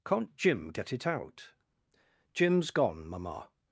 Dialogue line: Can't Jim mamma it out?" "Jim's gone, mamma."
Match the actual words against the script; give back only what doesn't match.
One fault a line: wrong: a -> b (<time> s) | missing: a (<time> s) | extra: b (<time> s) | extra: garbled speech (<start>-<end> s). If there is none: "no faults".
wrong: mamma -> get (0.7 s)